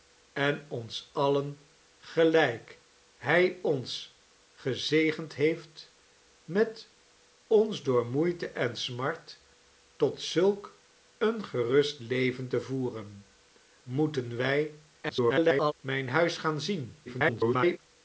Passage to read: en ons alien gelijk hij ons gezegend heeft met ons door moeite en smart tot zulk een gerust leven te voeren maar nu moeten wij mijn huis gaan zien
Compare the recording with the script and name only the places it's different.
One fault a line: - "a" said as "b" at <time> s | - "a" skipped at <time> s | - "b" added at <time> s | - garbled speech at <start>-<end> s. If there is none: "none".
- "maar nu" skipped at 13.2 s
- garbled speech at 15.0-15.7 s
- garbled speech at 17.1-17.8 s